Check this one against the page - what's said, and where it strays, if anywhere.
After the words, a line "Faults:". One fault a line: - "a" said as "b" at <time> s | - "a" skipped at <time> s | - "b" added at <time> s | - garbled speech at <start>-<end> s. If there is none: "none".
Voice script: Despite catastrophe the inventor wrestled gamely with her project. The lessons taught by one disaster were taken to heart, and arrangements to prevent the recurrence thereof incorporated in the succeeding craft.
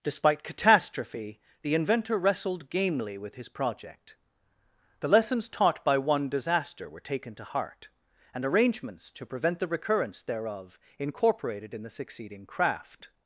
Despite catastrophe the inventor wrestled gamely with his project. The lessons taught by one disaster were taken to heart, and arrangements to prevent the recurrence thereof incorporated in the succeeding craft.
Faults:
- "her" said as "his" at 3.4 s